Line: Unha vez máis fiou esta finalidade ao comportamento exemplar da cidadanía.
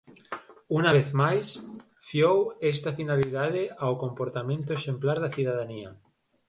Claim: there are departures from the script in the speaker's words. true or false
false